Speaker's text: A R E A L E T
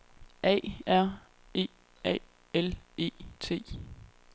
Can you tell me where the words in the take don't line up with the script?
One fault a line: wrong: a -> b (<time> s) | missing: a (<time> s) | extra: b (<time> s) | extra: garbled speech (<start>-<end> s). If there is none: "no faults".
no faults